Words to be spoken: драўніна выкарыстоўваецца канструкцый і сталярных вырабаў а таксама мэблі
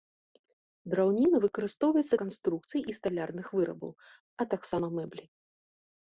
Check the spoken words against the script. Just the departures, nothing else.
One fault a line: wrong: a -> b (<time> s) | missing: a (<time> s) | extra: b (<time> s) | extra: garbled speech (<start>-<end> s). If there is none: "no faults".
no faults